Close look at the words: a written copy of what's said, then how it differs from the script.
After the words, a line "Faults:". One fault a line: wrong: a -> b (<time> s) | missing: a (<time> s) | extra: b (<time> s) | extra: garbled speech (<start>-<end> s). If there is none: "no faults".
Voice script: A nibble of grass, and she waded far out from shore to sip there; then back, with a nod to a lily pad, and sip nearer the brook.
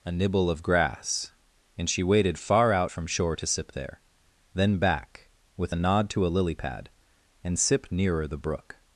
A nibble of grass, and she waded far out from shore to sip there; then back, with a nod to a lily pad, and sip nearer the brook.
Faults:
no faults